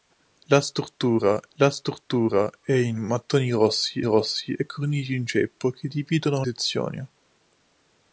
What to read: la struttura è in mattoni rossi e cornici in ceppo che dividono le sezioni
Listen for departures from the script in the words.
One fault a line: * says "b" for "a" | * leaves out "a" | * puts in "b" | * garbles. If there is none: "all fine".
* puts in "la struttura"
* puts in "rossi"
* leaves out "le"